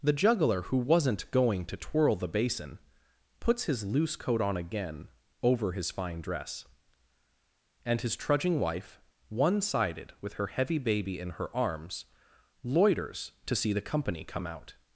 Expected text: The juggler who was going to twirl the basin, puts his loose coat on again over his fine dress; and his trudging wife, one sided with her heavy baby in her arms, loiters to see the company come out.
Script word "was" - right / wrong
wrong